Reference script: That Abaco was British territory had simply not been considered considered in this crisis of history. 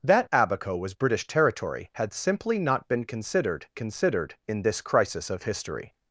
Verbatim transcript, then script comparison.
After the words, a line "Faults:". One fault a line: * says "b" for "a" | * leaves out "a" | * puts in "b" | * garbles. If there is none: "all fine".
That Abaco was British territory had simply not been considered considered in this crisis of history.
Faults:
all fine